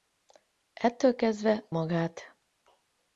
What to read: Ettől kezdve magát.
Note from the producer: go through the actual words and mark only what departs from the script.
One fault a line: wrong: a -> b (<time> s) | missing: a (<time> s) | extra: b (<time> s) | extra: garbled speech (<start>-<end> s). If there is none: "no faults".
no faults